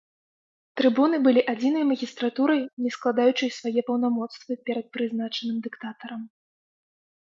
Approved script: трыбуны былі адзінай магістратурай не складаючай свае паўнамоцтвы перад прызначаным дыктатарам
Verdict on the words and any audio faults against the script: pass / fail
pass